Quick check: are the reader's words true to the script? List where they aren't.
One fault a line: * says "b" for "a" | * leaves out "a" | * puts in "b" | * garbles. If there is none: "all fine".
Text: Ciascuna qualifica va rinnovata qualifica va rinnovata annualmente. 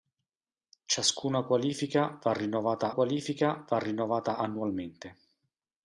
all fine